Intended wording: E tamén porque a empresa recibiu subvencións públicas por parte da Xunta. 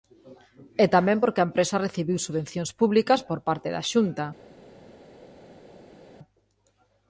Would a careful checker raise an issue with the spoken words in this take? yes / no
no